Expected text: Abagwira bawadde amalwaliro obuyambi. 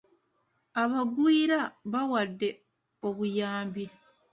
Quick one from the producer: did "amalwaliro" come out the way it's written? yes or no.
no